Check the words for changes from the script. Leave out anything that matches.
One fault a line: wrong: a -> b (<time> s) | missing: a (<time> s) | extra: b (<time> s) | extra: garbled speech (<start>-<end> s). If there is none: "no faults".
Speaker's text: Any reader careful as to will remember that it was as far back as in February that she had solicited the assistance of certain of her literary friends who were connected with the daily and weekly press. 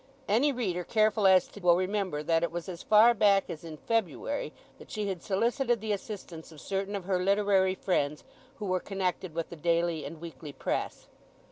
no faults